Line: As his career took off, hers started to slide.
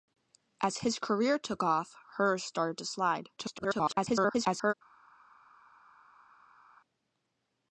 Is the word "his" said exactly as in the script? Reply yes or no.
yes